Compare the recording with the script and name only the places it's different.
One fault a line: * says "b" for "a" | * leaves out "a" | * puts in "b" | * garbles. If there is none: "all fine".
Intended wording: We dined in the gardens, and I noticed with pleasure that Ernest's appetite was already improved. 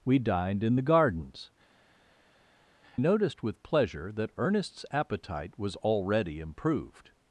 * leaves out "and I"